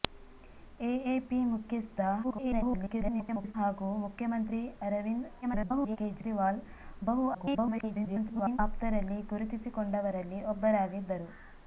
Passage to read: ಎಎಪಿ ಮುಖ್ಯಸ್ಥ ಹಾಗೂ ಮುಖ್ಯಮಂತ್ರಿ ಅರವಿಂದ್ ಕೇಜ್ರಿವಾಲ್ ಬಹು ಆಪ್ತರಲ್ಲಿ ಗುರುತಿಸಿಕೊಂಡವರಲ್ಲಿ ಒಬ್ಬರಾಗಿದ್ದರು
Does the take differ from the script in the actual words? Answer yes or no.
yes